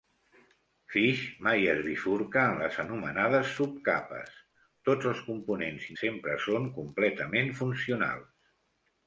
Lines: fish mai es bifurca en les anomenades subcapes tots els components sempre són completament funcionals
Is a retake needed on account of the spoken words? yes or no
no